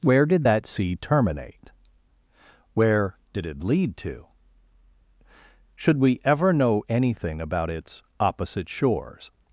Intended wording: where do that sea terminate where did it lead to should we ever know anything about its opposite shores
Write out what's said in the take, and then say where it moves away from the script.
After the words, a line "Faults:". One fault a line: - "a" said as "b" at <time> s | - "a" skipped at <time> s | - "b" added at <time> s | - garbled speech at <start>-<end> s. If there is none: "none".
where did that sea terminate where did it lead to should we ever know anything about its opposite shores
Faults:
- "do" said as "did" at 0.2 s